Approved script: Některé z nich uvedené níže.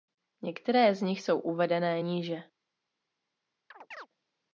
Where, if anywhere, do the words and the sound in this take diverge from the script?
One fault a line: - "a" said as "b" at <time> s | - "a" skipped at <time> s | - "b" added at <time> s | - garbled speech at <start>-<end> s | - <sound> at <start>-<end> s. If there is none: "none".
- "jsou" added at 1.2 s
- chirp at 3.7-4.1 s